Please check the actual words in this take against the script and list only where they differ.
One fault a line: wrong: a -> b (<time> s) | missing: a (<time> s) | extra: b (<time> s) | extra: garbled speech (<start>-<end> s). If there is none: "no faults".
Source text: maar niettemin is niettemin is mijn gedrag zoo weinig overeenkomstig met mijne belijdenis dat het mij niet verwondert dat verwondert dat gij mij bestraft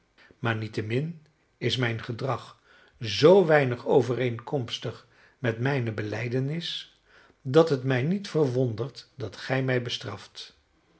missing: niettemin is (1.8 s)
missing: verwondert dat (9.4 s)